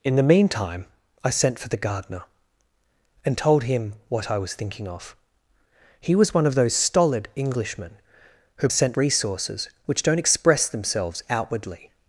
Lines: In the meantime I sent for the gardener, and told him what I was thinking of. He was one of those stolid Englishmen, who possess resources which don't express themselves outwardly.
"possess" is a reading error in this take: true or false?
true